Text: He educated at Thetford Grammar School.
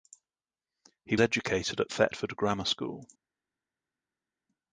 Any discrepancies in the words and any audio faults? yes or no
no